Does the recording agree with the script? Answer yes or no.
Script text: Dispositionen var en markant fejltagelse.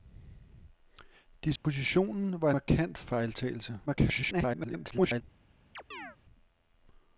no